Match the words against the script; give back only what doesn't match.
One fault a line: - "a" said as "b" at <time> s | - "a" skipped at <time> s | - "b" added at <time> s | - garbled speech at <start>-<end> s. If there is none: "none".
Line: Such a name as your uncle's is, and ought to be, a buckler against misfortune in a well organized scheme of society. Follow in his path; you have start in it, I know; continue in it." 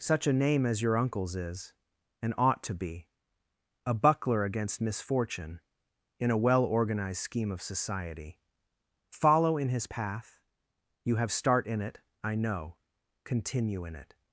none